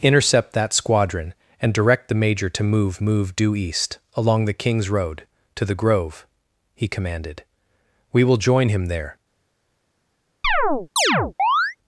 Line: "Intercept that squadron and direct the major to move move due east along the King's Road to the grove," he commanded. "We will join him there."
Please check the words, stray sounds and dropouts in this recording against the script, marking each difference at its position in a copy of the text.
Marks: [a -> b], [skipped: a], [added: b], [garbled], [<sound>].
"Intercept that squadron and direct the major to move move due east along the King's Road to the grove," he commanded. "We will join him there." [chirp]